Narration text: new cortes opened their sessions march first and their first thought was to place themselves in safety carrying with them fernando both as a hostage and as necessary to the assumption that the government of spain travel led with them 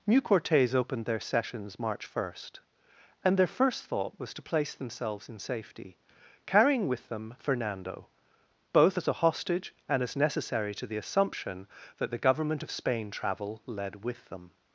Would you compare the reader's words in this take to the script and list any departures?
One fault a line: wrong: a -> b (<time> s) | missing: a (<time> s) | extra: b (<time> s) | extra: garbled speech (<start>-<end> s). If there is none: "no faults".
no faults